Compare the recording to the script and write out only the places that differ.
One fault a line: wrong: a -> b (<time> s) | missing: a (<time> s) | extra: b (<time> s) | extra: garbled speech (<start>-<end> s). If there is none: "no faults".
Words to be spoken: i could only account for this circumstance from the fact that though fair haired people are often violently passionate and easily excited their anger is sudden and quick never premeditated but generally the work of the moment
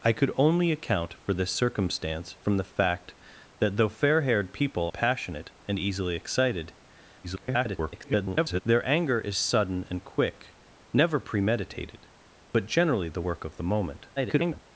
missing: are often violently (4.9 s)
extra: garbled speech (7.2-8.6 s)
extra: garbled speech (14.2-14.6 s)